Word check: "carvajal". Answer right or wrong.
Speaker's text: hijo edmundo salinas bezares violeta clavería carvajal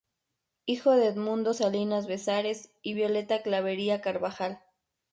right